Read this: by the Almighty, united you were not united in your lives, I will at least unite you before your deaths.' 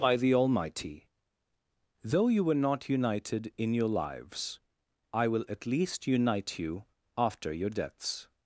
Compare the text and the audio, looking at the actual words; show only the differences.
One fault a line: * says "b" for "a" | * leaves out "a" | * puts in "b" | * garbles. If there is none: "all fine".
* says "though" for "united"
* says "after" for "before"